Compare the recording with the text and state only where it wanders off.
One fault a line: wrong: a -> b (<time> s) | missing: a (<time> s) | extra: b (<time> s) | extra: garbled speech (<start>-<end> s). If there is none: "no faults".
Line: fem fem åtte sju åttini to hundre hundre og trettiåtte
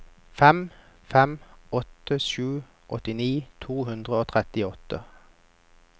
missing: hundre (4.2 s)